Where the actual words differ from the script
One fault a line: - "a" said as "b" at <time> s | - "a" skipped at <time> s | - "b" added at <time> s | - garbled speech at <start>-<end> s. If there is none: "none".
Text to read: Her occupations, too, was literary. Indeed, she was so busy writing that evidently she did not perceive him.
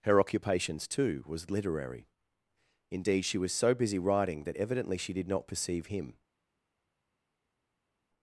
none